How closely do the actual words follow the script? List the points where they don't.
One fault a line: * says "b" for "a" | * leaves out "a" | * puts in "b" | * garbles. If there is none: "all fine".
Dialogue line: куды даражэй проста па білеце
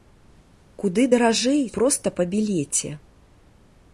all fine